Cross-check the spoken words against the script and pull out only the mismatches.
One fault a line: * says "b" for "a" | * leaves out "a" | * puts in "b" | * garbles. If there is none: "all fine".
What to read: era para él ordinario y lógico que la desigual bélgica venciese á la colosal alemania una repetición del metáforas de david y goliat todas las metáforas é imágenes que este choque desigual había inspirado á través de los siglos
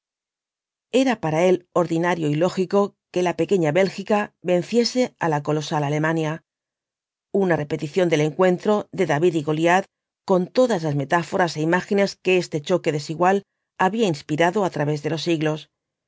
* says "pequeña" for "desigual"
* says "encuentro" for "metáforas"
* puts in "con"